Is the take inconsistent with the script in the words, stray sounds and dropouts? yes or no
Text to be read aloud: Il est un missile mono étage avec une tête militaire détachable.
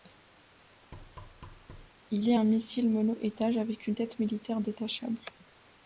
yes